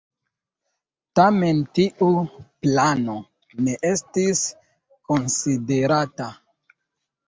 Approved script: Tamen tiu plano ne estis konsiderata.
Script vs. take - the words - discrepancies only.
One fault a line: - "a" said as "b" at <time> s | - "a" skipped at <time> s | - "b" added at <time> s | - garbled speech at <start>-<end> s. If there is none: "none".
none